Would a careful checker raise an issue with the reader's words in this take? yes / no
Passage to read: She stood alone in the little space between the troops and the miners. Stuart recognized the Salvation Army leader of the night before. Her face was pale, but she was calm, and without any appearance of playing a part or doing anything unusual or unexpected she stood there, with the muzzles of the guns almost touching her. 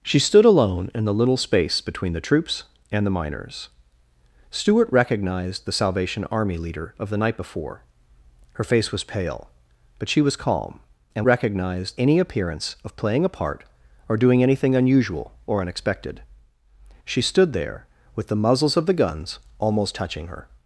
yes